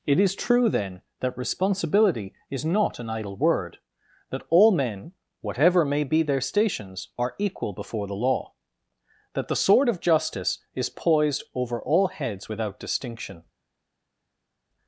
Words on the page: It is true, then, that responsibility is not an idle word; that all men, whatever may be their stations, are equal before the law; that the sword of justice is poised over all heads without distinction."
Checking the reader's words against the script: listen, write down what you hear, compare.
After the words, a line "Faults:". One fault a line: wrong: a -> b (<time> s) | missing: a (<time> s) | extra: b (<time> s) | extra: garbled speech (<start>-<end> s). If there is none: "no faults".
It is true, then, that responsibility is not an idle word; that all men, whatever may be their stations, are equal before the law; that the sword of justice is poised over all heads without distinction."
Faults:
no faults